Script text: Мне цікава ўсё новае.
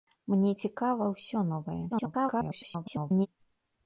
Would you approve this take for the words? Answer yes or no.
no